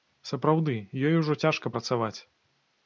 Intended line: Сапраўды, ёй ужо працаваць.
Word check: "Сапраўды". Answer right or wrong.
right